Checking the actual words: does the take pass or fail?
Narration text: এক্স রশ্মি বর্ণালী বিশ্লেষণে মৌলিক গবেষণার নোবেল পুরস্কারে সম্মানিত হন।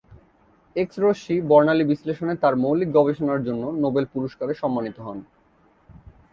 fail